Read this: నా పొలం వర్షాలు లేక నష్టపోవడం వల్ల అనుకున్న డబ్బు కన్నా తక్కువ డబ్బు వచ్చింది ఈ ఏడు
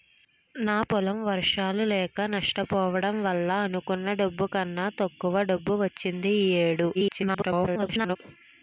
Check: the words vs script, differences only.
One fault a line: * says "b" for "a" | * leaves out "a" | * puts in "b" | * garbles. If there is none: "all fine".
* garbles